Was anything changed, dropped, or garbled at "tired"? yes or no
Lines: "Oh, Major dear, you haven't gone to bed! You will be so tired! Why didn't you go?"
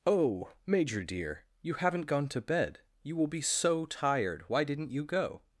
no